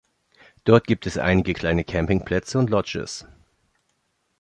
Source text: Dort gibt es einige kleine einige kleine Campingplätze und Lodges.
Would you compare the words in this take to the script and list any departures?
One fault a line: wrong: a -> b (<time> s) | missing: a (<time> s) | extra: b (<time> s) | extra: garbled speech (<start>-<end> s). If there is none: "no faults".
missing: einige kleine (1.8 s)